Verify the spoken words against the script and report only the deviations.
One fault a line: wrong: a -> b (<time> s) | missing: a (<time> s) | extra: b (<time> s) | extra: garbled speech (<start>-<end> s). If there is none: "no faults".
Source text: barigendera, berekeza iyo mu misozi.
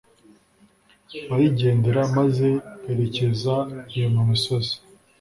extra: maze (2.2 s)